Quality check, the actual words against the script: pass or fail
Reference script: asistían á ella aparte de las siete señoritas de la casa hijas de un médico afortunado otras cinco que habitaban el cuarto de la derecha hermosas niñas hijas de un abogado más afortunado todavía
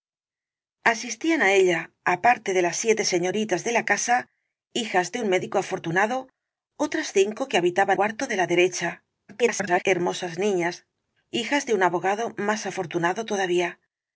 fail